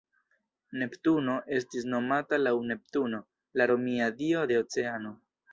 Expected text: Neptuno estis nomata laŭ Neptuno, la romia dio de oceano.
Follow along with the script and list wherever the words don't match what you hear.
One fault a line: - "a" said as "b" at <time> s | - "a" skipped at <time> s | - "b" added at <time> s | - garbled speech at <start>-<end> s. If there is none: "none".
none